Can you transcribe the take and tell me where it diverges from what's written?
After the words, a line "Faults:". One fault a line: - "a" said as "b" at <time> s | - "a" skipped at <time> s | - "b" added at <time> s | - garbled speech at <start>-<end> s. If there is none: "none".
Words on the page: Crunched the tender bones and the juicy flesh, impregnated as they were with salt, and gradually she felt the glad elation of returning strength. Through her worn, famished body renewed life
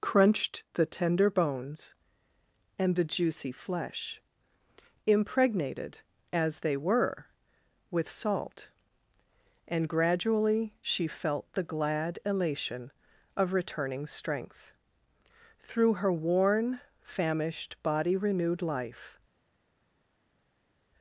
Crunched the tender bones and the juicy flesh, impregnated as they were with salt, and gradually she felt the glad elation of returning strength. Through her worn, famished body renewed life
Faults:
none